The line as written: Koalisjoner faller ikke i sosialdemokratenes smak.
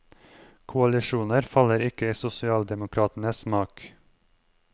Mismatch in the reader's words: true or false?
false